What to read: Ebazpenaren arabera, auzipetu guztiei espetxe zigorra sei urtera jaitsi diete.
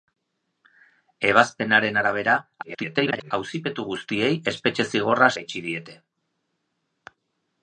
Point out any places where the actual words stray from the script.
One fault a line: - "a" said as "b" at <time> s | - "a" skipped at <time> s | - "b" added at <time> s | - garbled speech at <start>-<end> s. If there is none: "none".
- garbled speech at 2.6-3.3 s
- "sei urtera" skipped at 5.3 s